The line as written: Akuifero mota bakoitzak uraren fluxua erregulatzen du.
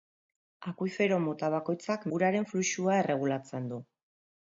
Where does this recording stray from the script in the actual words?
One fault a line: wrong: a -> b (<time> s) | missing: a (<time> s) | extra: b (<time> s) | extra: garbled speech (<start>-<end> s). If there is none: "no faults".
no faults